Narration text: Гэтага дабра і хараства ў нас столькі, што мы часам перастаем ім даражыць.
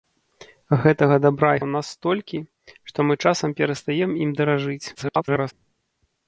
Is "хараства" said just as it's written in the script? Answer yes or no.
no